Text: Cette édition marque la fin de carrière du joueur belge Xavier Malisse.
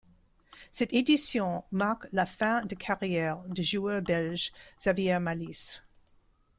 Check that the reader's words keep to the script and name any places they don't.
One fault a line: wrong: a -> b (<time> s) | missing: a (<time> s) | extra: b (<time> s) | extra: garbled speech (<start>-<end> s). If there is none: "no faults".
no faults